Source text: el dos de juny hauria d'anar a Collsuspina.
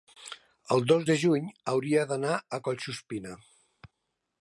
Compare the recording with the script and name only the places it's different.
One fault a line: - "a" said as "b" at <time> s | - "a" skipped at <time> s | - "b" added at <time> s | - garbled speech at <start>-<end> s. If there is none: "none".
none